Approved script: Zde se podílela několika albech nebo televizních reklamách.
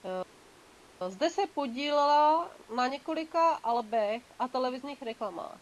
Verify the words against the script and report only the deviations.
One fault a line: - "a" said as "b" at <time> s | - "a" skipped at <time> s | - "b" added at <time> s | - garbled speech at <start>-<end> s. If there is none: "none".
- "na" added at 2.7 s
- "nebo" said as "a" at 4.4 s